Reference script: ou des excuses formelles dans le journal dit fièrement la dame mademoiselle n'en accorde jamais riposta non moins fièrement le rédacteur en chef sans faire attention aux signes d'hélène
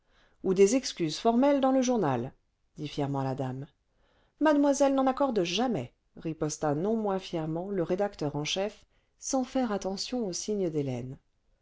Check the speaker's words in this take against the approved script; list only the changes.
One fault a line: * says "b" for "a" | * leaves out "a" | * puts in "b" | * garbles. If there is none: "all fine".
all fine